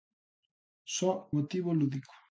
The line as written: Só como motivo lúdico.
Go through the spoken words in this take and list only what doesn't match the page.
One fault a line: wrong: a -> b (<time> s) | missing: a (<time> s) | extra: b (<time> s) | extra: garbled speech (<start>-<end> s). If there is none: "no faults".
missing: como (1.1 s)